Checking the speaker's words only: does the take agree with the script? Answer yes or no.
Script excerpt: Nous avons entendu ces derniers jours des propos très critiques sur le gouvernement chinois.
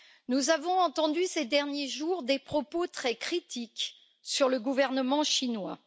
yes